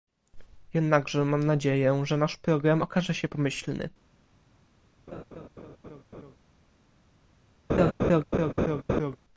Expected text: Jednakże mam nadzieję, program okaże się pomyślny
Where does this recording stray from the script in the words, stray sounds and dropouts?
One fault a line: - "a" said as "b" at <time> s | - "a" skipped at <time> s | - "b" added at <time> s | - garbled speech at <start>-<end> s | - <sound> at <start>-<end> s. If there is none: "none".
- "że nasz" added at 2.0 s
- laugh at 5.1-6.4 s
- laugh at 7.7-9.2 s